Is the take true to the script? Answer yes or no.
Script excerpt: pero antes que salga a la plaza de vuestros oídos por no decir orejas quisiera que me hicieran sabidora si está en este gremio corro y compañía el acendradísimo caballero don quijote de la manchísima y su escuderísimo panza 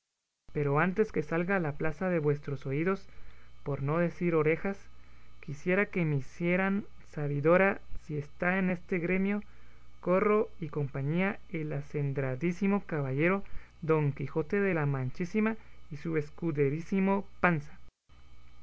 yes